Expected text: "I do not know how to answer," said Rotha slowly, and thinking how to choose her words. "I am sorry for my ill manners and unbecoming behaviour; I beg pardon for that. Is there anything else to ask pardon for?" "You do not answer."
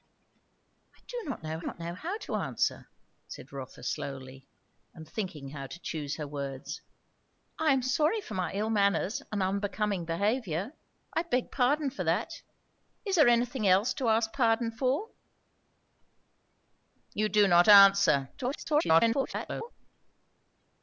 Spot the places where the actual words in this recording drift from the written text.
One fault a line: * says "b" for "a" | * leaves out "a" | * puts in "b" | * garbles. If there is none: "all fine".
* puts in "not know"
* garbles